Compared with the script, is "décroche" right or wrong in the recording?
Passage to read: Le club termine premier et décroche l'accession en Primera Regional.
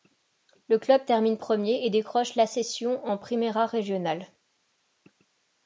right